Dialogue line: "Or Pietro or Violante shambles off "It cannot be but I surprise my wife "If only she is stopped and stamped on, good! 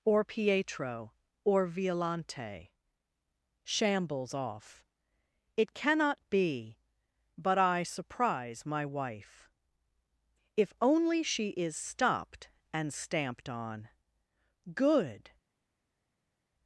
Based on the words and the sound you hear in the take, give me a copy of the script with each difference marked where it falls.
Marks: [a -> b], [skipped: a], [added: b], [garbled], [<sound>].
"Or Pietro or Violante shambles off "It cannot be but I surprise my wife "If only she is stopped and stamped on, good!